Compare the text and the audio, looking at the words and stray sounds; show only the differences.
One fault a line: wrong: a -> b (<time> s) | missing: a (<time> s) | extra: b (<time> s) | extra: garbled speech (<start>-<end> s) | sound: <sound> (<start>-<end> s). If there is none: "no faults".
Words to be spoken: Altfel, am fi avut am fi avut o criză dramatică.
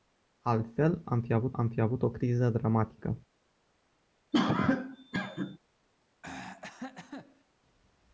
sound: cough (4.3-5.6 s)
sound: throat clearing (6.2-7.4 s)